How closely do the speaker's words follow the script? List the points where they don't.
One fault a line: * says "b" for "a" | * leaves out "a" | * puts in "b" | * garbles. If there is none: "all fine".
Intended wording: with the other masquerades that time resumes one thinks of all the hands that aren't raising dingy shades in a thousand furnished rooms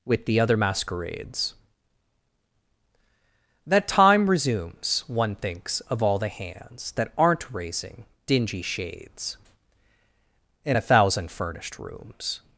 all fine